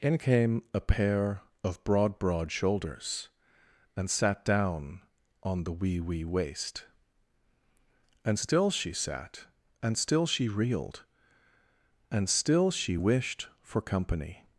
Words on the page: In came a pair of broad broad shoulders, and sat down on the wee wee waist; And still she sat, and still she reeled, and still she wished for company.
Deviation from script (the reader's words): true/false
false